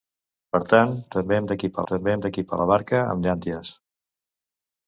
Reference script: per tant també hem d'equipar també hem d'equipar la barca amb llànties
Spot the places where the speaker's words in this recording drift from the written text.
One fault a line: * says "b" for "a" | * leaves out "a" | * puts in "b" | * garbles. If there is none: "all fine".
all fine